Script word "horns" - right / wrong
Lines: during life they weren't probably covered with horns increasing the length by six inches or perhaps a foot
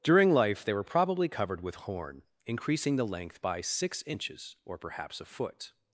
wrong